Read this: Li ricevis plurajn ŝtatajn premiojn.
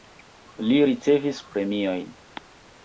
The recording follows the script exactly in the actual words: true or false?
false